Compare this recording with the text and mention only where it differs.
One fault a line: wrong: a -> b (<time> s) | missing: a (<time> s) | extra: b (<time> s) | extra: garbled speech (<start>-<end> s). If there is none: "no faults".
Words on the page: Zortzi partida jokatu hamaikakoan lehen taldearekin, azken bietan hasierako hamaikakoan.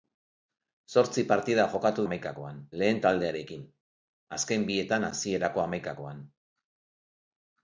no faults